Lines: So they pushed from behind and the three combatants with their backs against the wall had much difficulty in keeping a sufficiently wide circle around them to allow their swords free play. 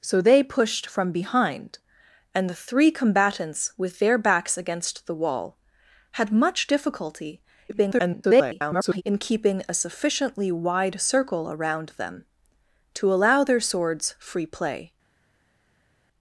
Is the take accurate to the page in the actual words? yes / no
no